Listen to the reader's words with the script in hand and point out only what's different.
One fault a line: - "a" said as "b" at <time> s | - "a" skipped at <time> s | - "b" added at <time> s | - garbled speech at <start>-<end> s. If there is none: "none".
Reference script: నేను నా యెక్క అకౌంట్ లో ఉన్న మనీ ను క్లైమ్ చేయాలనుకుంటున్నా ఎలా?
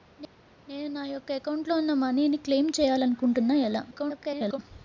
- garbled speech at 3.9-4.6 s